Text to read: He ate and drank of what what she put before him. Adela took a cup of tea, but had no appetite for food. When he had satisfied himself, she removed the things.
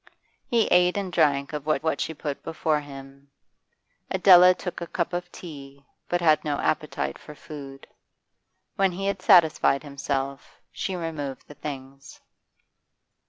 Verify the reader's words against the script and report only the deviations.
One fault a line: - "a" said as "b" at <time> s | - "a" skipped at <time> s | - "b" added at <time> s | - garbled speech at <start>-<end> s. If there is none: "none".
none